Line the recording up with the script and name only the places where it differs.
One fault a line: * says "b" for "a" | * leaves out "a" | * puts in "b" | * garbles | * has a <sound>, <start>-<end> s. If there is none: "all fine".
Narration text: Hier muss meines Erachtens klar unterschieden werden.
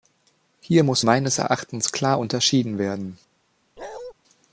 * has a bark, 3.8-4.1 s